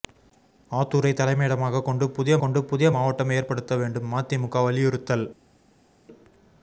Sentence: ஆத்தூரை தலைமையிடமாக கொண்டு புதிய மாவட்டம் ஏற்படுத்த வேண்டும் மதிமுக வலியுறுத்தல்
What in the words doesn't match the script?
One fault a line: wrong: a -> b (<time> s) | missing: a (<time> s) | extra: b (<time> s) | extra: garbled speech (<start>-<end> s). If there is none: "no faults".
extra: கொண்டு புதிய (2.4 s)